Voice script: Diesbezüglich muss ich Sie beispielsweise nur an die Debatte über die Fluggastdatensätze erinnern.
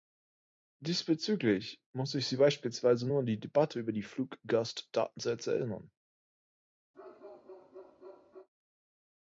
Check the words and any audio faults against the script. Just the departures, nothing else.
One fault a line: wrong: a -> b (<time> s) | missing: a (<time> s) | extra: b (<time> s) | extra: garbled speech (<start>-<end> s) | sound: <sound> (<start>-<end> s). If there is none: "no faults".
sound: bark (6.9-8.5 s)